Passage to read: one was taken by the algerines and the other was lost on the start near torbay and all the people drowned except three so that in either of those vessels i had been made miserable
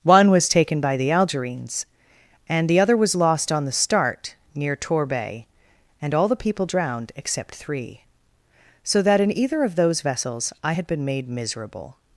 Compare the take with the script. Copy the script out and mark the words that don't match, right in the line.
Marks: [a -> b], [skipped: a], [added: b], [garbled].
one was taken by the algerines and the other was lost on the start near torbay and all the people drowned except three so that in either of those vessels i had been made miserable